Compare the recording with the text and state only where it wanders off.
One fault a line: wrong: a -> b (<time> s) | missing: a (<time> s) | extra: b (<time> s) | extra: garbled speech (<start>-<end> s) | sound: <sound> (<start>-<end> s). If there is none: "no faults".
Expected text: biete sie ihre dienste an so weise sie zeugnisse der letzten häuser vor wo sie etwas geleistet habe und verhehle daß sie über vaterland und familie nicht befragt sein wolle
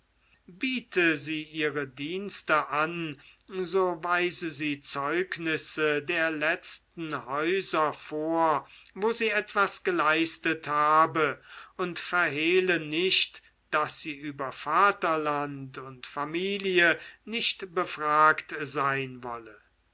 extra: nicht (12.8 s)